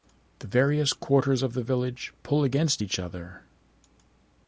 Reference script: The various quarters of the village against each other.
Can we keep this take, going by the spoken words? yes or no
no